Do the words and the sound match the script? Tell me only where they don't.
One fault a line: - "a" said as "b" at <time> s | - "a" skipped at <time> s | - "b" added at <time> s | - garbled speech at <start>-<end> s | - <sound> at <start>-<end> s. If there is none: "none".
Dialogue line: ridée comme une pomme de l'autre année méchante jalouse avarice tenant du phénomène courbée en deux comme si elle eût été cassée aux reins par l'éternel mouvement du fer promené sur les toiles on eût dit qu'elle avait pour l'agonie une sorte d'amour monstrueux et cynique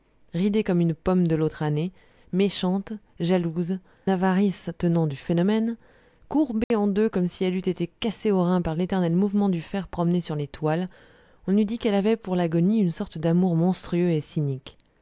- dropout at 6.6-6.7 s